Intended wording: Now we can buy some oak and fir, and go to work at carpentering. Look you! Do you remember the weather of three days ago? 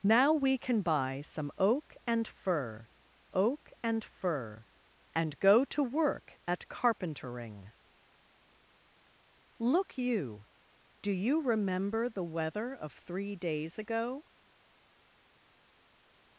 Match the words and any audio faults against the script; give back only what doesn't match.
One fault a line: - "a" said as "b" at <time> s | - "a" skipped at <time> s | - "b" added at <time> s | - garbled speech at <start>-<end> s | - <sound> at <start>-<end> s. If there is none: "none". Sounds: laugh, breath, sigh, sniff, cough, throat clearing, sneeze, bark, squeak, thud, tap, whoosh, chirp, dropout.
- "oak and fir" added at 3.3 s